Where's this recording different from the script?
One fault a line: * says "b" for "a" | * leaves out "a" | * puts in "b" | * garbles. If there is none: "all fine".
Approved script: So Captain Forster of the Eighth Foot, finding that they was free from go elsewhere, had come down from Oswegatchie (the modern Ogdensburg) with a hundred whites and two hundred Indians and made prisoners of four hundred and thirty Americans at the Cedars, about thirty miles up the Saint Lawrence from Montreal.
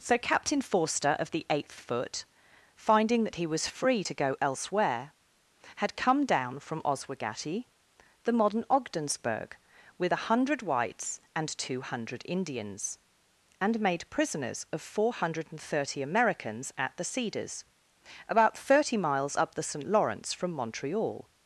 * says "he" for "they"
* says "to" for "from"